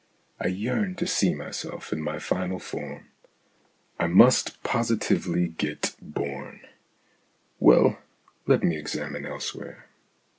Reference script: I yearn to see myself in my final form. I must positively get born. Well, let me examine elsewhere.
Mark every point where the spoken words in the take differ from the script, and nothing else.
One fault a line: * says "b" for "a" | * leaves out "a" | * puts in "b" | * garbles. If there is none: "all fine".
all fine